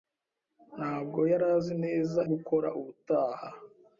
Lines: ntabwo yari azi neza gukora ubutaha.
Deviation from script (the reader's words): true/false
false